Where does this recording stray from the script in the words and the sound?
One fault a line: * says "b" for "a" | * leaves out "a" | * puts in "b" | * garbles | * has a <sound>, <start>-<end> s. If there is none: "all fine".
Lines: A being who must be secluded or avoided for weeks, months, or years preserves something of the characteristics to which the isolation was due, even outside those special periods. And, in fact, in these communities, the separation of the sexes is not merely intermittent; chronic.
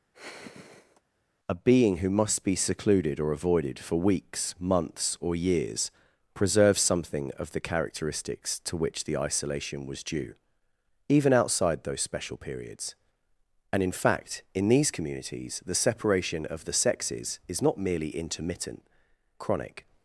* has a sigh, 0.1-1.0 s